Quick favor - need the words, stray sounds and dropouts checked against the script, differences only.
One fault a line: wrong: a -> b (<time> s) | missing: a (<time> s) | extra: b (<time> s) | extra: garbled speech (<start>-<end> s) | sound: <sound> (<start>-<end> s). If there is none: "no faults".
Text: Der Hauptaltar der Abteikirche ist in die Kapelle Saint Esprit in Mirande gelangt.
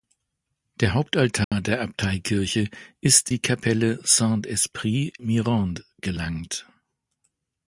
sound: dropout (1.4-1.5 s)
missing: in (3.3 s)
missing: in (5.1 s)